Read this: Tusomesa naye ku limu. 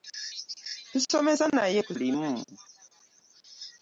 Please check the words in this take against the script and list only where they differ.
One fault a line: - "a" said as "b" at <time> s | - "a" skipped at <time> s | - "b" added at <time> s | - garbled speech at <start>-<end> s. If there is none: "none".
none